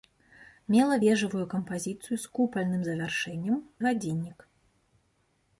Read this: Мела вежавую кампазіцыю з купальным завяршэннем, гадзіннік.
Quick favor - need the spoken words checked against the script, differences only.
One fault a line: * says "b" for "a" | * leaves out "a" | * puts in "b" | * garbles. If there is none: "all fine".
all fine